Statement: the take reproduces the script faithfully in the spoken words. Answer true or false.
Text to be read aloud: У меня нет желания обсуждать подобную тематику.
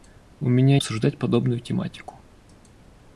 false